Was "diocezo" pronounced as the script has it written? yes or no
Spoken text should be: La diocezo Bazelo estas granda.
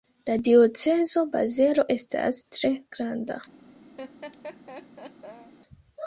yes